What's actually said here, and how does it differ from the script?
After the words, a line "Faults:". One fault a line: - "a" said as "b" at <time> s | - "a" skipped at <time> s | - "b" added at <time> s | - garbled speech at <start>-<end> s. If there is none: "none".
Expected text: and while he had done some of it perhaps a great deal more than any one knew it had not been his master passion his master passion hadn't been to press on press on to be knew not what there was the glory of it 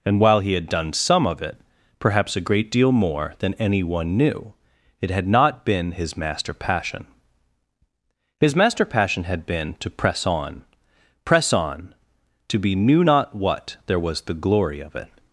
and while he had done some of it perhaps a great deal more than any one knew it had not been his master passion his master passion had been to press on press on to be knew not what there was the glory of it
Faults:
- "hadn't" said as "had" at 9.2 s